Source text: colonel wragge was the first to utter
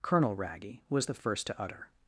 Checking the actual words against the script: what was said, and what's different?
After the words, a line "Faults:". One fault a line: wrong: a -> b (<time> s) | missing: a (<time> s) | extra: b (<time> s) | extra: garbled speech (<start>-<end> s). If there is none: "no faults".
colonel wragge was the first to utter
Faults:
no faults